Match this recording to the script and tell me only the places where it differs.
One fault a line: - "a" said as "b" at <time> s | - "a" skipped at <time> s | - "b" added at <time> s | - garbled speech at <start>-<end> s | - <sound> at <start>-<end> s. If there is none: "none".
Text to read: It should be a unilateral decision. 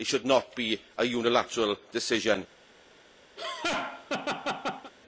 - "not" added at 0.2 s
- laugh at 3.4-4.9 s